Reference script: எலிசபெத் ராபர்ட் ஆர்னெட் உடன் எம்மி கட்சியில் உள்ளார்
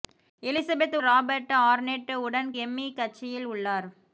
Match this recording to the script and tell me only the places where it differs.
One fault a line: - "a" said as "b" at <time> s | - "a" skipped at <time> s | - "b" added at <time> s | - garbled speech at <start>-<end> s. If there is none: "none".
none